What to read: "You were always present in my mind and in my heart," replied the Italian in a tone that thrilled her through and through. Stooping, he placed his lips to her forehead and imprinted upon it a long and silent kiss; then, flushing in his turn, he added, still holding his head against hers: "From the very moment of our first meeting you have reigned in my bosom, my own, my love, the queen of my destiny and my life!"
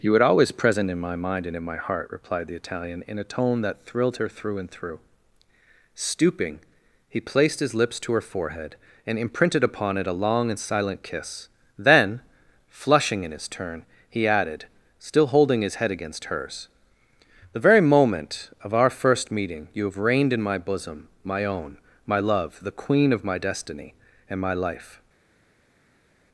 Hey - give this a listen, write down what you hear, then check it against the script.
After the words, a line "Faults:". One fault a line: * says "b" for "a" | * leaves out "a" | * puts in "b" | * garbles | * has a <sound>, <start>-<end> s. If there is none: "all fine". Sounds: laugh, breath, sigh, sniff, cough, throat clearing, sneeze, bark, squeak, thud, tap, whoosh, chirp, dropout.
"You were always present in my mind and in my heart," replied the Italian in a tone that thrilled her through and through. Stooping, he placed his lips to her forehead and imprinted upon it a long and silent kiss; then, flushing in his turn, he added, still holding his head against hers: "the very moment of our first meeting you have reigned in my bosom, my own, my love, the queen of my destiny and my life!"
Faults:
* leaves out "From"